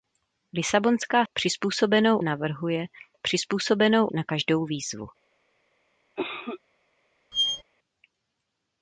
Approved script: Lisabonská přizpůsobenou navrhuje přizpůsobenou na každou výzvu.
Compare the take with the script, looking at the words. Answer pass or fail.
pass